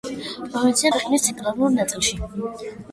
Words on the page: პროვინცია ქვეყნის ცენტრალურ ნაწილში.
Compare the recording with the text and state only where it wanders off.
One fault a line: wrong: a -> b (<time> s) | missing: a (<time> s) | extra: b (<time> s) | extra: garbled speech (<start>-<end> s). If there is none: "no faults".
no faults